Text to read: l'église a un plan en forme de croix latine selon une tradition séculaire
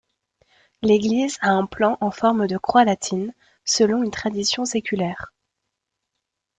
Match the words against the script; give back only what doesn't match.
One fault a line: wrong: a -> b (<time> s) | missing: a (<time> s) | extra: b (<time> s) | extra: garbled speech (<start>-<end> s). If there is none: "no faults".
no faults